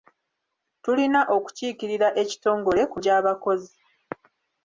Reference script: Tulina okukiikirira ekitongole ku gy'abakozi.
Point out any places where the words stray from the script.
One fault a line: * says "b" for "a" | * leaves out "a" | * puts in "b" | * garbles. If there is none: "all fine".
all fine